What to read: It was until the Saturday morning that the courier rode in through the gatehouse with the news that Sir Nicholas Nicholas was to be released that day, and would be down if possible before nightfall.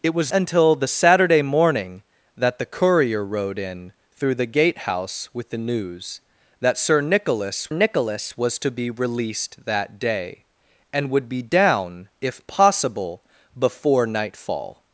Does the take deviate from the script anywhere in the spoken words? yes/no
no